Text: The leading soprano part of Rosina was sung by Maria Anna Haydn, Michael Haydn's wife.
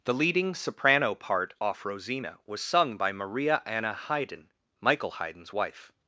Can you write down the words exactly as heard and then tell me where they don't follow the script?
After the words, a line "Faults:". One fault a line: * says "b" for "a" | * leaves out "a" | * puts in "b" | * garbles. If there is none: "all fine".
The leading soprano part off Rosina was sung by Maria Anna Haydn, Michael Haydn's wife.
Faults:
* says "off" for "of"